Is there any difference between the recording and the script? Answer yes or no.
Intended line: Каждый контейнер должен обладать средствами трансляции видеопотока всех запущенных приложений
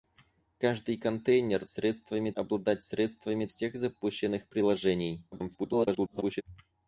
yes